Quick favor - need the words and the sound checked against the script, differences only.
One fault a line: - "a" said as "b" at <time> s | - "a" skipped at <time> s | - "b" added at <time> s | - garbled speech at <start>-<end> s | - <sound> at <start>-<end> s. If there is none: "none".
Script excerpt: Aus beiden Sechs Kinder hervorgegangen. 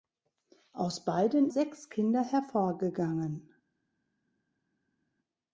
none